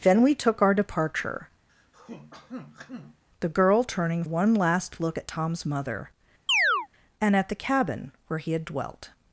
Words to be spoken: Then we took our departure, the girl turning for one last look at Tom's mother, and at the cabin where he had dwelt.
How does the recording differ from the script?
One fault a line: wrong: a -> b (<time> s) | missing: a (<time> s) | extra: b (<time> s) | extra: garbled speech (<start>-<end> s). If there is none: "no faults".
missing: for (4.2 s)